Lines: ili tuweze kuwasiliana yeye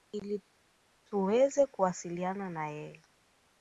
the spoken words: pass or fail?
fail